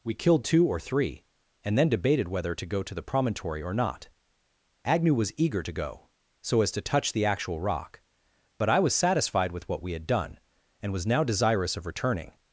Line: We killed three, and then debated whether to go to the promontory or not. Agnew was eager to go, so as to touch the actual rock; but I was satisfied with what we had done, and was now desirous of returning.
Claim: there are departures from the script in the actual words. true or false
true